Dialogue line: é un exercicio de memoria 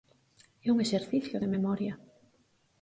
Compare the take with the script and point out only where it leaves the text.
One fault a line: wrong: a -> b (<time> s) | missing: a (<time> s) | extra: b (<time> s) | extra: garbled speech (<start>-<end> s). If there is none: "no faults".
no faults